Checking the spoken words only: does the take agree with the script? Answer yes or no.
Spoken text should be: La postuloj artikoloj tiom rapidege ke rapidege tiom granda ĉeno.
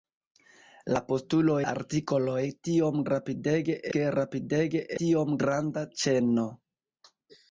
yes